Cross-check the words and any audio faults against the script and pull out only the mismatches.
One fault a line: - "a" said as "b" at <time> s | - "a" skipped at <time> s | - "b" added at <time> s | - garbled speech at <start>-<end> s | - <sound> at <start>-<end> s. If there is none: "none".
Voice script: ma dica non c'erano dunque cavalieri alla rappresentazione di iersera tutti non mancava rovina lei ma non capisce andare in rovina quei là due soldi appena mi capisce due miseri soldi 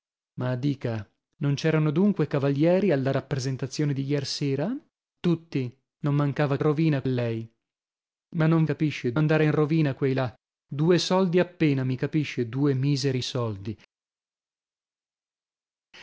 none